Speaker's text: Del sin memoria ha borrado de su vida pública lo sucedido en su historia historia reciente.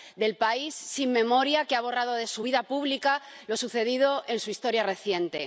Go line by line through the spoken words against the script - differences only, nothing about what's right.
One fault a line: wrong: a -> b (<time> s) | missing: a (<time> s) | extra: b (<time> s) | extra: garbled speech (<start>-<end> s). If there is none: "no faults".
extra: país (0.4 s)
extra: que (1.6 s)
missing: historia (4.8 s)